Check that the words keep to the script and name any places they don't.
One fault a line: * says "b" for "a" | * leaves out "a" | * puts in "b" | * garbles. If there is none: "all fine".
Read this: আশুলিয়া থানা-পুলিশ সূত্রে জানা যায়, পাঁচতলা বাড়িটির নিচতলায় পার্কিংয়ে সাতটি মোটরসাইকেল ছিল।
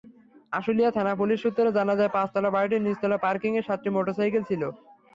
all fine